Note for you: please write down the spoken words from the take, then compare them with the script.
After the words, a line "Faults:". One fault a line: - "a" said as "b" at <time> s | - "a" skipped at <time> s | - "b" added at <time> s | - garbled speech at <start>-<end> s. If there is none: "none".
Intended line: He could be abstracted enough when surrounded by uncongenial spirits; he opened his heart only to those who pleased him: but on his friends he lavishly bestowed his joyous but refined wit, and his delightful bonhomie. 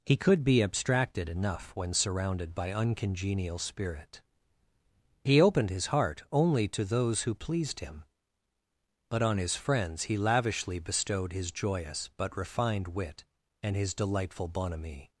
He could be abstracted enough when surrounded by uncongenial spirit; he opened his heart only to those who pleased him: but on his friends he lavishly bestowed his joyous but refined wit, and his delightful bonhomie.
Faults:
- "spirits" said as "spirit" at 3.6 s